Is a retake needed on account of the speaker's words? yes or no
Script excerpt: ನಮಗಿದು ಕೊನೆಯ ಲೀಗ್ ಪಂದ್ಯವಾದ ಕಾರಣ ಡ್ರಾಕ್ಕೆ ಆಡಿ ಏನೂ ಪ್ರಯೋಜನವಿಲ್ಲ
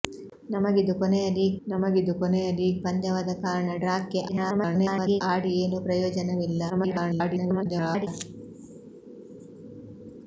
yes